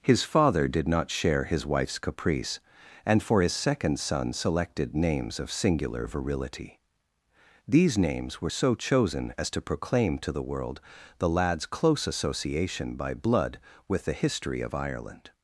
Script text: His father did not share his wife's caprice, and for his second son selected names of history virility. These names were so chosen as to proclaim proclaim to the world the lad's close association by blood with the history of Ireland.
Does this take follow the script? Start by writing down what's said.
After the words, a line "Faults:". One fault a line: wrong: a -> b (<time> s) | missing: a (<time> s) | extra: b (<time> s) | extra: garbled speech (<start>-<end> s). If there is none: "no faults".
His father did not share his wife's caprice, and for his second son selected names of singular virility. These names were so chosen as to proclaim to the world the lad's close association by blood with the history of Ireland.
Faults:
wrong: history -> singular (5.5 s)
missing: proclaim (10.2 s)